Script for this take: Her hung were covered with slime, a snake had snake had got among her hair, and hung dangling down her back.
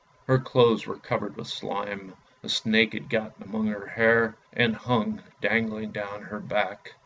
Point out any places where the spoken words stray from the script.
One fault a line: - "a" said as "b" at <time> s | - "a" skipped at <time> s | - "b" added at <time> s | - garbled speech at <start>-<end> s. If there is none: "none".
- "hung" said as "clothes" at 0.4 s
- "snake had" skipped at 3.1 s